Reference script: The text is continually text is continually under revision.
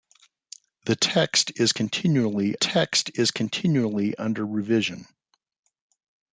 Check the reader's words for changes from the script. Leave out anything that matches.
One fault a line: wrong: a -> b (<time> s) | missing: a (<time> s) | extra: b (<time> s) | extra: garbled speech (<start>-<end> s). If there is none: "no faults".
no faults